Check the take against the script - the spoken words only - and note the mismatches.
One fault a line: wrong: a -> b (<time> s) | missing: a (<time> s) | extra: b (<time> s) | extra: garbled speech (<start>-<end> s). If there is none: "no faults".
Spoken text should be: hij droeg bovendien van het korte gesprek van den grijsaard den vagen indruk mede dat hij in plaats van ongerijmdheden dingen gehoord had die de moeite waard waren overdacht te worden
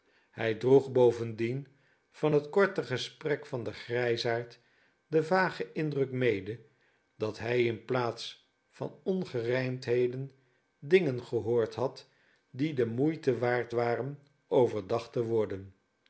no faults